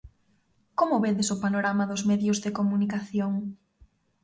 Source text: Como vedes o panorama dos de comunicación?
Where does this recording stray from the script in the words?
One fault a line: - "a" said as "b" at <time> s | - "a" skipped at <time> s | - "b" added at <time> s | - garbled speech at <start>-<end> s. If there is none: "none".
- "medios" added at 2.1 s